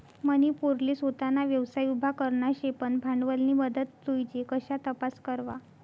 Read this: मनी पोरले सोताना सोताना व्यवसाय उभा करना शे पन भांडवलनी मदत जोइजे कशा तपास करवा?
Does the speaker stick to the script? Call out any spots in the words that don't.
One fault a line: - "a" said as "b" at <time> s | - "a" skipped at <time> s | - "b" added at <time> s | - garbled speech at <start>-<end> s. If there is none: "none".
- "सोताना" skipped at 1.4 s